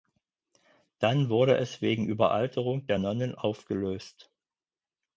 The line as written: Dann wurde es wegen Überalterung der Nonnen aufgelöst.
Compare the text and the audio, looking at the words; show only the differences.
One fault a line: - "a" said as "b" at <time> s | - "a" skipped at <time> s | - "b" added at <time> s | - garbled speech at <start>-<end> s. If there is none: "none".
none